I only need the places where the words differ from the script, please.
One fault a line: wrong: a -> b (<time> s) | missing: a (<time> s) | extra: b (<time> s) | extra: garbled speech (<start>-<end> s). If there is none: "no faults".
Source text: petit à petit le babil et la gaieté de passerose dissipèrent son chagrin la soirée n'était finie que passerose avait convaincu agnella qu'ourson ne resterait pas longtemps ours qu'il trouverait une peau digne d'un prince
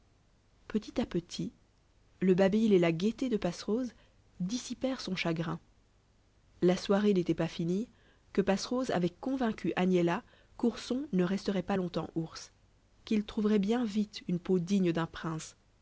extra: pas (7.3 s)
extra: bien vite (13.6 s)